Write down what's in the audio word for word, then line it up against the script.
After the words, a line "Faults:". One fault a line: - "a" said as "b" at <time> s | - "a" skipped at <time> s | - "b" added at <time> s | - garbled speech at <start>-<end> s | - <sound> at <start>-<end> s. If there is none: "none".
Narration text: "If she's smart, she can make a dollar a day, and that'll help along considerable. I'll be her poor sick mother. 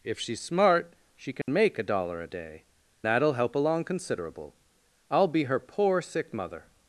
"If she's smart, she can make a dollar a day, that'll help along considerable. I'll be her poor sick mother.
Faults:
- dropout at 1.4-1.5 s
- "and" skipped at 2.6 s